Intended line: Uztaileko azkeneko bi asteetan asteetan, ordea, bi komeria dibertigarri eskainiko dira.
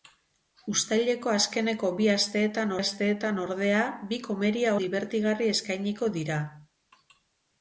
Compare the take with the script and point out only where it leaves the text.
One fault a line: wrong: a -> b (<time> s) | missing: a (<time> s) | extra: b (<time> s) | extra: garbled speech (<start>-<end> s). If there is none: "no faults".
no faults